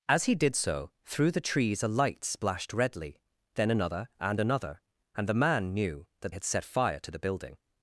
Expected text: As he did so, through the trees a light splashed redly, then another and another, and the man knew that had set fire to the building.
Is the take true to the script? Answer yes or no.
yes